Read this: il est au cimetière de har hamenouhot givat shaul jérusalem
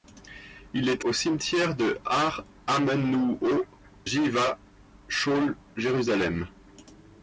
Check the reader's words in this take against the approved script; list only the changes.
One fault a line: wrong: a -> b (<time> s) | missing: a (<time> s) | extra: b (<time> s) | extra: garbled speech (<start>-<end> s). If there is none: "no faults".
no faults